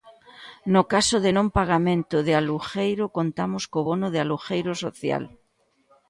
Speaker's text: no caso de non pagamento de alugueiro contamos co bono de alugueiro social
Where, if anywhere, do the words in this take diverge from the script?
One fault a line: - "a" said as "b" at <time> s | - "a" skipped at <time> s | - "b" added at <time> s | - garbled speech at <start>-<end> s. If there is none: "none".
none